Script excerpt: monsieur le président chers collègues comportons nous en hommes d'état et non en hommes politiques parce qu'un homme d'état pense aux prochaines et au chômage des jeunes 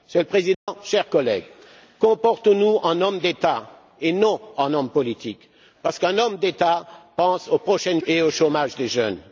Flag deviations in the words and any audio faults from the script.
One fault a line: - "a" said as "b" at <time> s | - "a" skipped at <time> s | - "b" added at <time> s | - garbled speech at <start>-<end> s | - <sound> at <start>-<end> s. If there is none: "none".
- dropout at 0.5-0.7 s